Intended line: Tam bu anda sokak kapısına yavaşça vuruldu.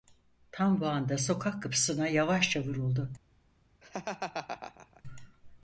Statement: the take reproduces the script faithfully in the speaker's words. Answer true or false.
true